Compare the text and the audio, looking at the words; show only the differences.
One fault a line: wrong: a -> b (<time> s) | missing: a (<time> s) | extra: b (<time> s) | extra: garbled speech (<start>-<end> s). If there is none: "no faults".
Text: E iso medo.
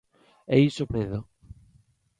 no faults